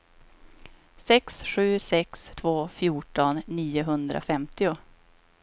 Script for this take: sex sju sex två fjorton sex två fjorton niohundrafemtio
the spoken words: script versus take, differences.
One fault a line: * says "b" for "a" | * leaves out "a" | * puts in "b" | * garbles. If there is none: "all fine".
* leaves out "sex två fjorton"